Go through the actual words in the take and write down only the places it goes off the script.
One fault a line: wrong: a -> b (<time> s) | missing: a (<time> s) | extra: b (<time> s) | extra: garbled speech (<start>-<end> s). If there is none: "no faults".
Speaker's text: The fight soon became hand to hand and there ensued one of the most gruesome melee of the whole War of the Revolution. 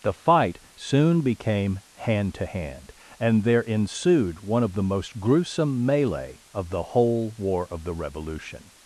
no faults